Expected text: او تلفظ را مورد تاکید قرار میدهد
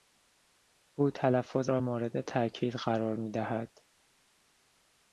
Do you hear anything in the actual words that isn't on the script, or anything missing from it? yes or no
no